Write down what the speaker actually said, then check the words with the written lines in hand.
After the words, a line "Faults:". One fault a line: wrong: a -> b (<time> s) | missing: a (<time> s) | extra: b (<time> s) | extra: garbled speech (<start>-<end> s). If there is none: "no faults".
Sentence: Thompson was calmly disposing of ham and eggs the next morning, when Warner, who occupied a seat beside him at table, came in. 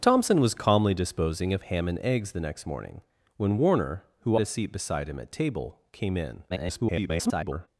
Thompson was calmly disposing of ham and eggs the next morning, when Warner, who a seat beside him at table, came in. [garbled]
Faults:
missing: occupied (4.4 s)
extra: garbled speech (6.5-7.7 s)